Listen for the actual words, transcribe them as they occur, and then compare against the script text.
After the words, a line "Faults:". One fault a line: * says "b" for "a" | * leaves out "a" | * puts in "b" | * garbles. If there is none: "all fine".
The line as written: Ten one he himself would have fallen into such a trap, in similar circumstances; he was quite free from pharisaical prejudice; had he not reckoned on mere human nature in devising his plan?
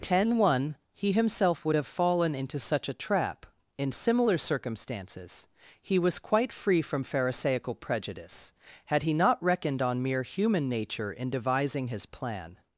Ten one he himself would have fallen into such a trap, in similar circumstances; he was quite free from pharisaical prejudice; had he not reckoned on mere human nature in devising his plan?
Faults:
all fine